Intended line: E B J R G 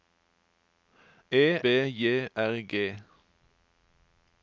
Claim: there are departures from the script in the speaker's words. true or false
false